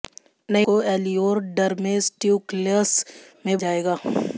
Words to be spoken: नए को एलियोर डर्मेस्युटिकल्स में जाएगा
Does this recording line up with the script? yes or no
yes